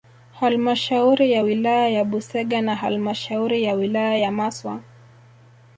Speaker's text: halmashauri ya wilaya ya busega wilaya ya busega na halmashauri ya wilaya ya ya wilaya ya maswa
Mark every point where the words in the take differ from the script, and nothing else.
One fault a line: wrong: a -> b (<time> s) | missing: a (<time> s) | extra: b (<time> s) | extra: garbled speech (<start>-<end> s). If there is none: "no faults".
missing: wilaya ya busega (2.6 s)
missing: ya wilaya ya (4.3 s)